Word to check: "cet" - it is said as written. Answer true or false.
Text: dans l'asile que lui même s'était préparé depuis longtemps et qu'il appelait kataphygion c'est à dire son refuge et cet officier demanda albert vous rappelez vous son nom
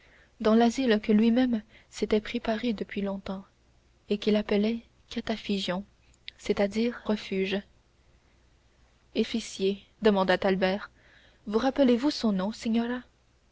false